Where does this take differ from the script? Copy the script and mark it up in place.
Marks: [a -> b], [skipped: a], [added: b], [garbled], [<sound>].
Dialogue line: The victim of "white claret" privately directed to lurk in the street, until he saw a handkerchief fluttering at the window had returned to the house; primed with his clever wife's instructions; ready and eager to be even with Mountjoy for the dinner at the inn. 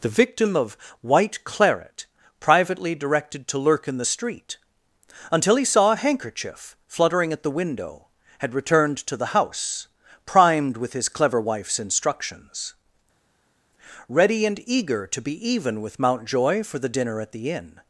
The victim of "white claret" privately directed to lurk in the street, until he saw a handkerchief fluttering at the window had returned to the house; primed with his clever wife's instructions; ready and eager to be even with Mountjoy for the dinner at the inn.